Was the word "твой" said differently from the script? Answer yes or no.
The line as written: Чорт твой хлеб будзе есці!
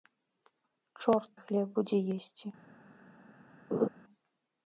yes